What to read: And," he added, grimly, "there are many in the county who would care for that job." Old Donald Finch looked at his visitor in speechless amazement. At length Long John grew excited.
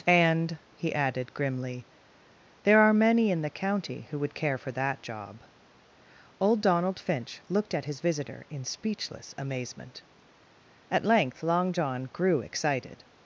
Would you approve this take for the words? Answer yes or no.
yes